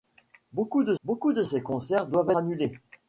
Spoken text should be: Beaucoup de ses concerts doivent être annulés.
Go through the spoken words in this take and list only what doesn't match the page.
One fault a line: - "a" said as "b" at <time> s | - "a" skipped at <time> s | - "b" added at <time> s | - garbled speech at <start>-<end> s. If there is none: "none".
- "beaucoup de" added at 1.0 s
- "être" skipped at 2.3 s